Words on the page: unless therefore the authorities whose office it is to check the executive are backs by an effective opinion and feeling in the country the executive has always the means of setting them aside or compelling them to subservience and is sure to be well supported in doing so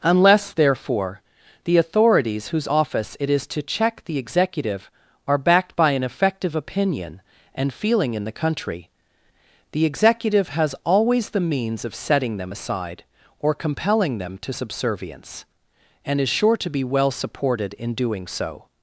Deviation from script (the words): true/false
true